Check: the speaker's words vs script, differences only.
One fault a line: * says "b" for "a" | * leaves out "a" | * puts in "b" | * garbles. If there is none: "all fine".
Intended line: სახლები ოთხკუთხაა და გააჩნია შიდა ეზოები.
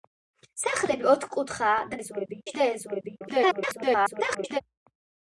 * says "ეზოები" for "გააჩნია"
* garbles